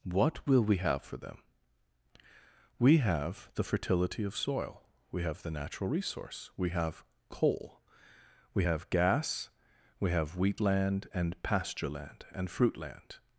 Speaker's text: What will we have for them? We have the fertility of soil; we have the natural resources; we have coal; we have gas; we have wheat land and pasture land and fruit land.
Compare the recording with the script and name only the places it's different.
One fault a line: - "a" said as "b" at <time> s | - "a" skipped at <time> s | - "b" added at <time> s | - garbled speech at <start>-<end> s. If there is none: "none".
- "resources" said as "resource" at 5.9 s